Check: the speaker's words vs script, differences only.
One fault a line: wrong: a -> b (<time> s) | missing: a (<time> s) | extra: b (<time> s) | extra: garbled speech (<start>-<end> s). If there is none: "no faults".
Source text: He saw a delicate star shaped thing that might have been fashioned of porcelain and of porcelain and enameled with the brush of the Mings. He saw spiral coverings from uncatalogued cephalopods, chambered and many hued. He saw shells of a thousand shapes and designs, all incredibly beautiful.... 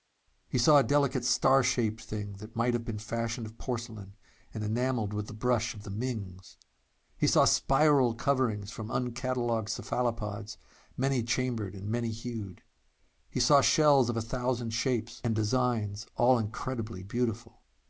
missing: of porcelain and (4.6 s)
extra: many (11.0 s)